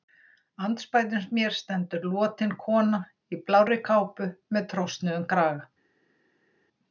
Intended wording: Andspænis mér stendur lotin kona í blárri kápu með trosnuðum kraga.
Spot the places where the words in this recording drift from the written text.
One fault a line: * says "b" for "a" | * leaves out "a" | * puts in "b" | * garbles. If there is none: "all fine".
all fine